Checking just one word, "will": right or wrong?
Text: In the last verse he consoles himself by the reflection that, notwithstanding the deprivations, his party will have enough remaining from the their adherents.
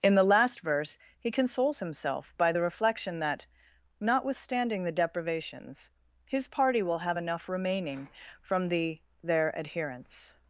right